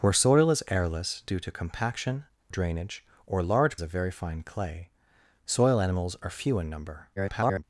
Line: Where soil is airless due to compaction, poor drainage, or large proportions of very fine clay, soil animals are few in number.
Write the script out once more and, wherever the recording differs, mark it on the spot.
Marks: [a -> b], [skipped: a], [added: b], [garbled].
Where soil is airless due to compaction, [skipped: poor] drainage, or large [skipped: proportions] of very fine clay, soil animals are few in number. [garbled]